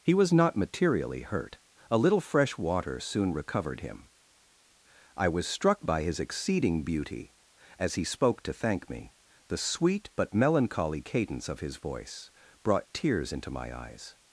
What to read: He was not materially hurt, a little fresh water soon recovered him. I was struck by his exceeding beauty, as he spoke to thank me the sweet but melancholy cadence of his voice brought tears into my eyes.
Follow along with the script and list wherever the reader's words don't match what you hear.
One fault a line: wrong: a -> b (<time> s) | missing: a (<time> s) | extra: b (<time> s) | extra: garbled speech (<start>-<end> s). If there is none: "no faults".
no faults